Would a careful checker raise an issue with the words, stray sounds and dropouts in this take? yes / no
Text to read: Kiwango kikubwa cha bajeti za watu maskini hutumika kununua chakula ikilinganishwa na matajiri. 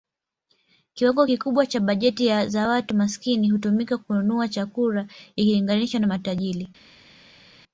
no